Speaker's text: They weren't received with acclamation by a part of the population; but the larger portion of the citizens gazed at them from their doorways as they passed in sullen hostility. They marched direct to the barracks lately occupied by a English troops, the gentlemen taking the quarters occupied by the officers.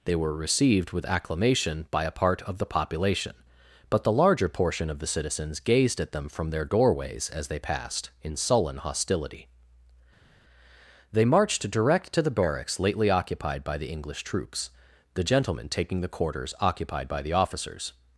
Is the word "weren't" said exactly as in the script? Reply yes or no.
no